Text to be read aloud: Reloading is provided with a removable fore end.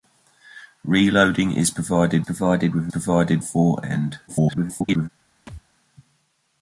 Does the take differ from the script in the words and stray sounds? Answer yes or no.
yes